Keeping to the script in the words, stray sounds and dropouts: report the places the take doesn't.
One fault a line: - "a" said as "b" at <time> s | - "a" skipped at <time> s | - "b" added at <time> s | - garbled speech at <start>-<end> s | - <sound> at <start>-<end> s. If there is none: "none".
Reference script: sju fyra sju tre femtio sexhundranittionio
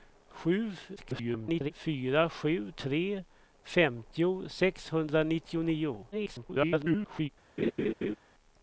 - garbled speech at 1.0-1.7 s
- garbled speech at 6.1-7.3 s
- laugh at 7.6-8.2 s